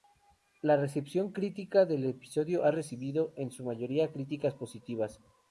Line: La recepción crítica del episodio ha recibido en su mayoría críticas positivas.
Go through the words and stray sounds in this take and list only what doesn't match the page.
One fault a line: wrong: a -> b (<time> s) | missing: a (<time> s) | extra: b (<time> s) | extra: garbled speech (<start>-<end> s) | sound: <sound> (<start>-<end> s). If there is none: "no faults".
no faults